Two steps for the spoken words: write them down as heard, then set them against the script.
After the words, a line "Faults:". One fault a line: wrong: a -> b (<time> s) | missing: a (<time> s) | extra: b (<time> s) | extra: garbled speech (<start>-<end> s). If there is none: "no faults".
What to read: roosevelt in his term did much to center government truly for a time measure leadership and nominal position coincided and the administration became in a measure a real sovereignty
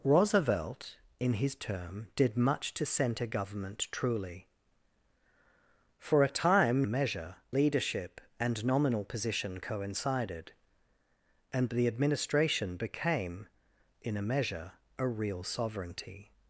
roosevelt in his term did much to center government truly for a time measure leadership and nominal position coincided and the administration became in a measure a real sovereignty
Faults:
no faults